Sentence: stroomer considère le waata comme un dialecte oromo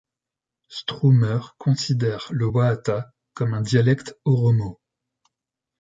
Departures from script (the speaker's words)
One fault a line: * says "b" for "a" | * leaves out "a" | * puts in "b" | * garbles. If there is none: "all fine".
all fine